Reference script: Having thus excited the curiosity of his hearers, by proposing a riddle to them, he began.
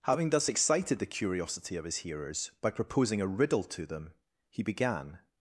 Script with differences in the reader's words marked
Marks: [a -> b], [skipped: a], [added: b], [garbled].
Having thus excited the curiosity of his hearers, by proposing a riddle to them, he began.